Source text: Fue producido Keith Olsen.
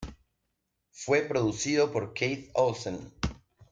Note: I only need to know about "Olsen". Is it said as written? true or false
true